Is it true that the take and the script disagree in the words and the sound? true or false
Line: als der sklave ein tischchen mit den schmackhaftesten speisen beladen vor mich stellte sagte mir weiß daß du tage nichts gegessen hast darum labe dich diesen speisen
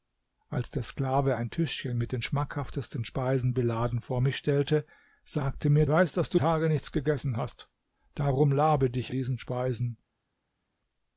false